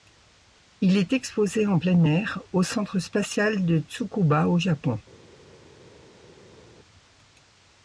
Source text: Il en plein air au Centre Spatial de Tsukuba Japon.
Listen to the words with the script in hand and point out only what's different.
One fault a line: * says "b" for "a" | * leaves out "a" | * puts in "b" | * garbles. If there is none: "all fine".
* puts in "est exposé"
* puts in "au"